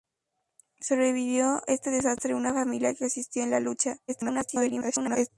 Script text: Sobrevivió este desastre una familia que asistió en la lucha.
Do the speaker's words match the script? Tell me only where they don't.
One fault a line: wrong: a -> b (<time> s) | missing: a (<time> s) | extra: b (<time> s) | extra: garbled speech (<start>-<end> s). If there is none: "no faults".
extra: garbled speech (4.1-5.3 s)